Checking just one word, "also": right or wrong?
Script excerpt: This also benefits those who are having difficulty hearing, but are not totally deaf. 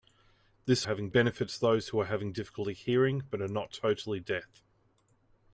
wrong